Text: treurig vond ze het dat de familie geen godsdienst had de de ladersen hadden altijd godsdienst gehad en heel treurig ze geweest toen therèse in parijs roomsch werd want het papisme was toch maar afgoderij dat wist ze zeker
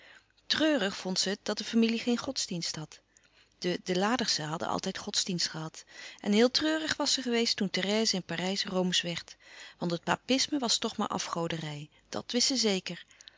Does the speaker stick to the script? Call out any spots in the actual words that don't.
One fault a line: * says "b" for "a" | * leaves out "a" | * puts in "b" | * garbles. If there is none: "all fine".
* puts in "was"